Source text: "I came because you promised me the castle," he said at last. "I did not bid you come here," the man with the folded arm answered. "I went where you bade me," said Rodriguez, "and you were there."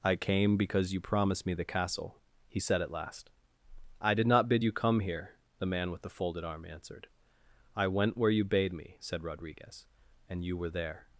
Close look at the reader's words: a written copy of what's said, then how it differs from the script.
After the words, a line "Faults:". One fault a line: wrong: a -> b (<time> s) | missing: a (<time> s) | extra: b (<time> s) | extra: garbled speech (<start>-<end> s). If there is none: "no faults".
"I came because you promised me the castle," he said at last. "I did not bid you come here," the man with the folded arm answered. "I went where you bade me," said Rodriguez, "and you were there."
Faults:
no faults